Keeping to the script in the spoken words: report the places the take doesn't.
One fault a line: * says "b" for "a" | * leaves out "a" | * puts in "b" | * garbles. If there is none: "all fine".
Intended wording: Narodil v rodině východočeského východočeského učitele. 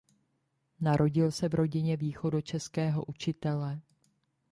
* puts in "se"
* leaves out "východočeského"